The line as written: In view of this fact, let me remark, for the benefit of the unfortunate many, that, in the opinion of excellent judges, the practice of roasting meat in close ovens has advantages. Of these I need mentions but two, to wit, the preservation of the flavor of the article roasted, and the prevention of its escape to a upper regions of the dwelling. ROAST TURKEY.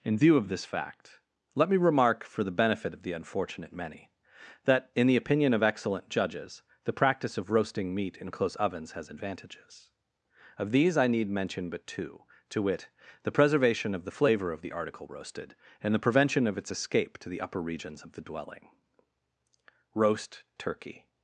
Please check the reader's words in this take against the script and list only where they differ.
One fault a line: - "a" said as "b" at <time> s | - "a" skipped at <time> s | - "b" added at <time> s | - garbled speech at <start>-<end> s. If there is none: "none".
- "mentions" said as "mention" at 11.3 s
- "a" said as "the" at 17.3 s